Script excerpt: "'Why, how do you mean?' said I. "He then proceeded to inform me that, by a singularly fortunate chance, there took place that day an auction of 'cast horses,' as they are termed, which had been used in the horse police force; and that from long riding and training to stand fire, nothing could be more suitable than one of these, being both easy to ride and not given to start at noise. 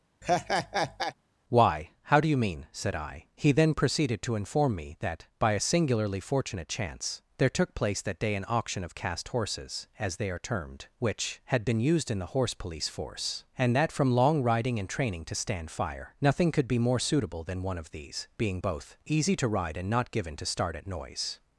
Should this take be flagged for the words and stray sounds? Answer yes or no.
yes